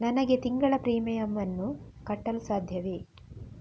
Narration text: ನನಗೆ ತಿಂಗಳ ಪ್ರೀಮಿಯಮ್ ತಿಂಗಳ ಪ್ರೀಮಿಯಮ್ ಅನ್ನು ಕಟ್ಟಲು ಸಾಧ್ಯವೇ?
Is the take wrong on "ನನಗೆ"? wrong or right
right